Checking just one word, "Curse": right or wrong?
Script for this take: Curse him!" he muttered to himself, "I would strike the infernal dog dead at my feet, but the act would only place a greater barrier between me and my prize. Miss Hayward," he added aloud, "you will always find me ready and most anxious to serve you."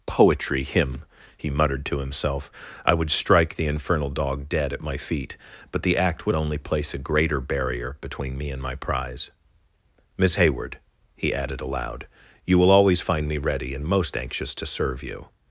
wrong